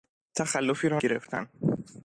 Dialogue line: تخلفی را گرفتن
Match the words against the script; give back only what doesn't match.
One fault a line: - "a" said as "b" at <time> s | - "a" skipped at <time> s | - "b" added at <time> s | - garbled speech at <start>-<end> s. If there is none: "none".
none